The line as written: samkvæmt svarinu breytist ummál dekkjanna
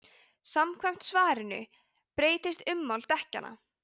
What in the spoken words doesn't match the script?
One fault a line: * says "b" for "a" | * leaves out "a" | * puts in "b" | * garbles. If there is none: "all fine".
all fine